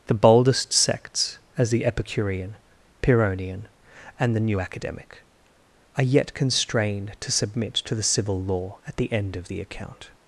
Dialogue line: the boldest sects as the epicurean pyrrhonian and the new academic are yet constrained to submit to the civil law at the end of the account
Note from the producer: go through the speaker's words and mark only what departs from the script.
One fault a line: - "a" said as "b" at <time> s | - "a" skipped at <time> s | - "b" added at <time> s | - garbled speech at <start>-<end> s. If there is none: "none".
none